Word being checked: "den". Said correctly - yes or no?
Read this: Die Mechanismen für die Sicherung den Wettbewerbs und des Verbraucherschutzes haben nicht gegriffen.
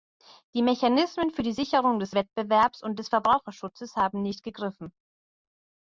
no